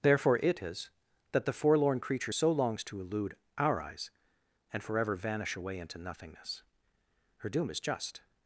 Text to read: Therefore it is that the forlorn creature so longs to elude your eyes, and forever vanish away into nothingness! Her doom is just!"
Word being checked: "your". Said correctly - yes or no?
no